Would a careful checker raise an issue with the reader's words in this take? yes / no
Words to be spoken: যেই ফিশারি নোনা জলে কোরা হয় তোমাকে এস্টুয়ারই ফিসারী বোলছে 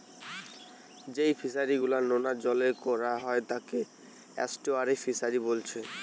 yes